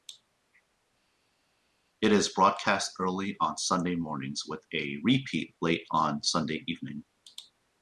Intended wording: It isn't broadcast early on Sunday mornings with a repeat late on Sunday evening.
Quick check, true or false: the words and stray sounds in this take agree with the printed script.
false